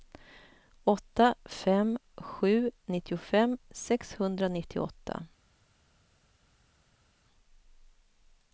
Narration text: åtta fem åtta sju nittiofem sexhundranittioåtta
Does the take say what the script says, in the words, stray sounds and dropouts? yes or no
no